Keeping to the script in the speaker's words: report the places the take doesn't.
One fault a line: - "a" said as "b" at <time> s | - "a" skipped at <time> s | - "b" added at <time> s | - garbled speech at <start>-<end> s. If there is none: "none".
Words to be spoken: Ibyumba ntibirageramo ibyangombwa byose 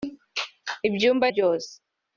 - "ntibirageramo ibyangombwa" skipped at 1.2 s